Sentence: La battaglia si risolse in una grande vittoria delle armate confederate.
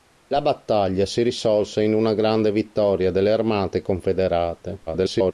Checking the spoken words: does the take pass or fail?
fail